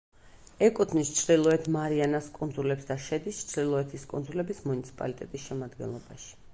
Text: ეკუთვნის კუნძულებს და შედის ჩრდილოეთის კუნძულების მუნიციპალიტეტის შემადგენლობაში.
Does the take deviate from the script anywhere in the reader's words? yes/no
yes